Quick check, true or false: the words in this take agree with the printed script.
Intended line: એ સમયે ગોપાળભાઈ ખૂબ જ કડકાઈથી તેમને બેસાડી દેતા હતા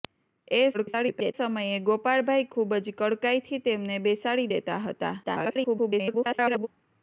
false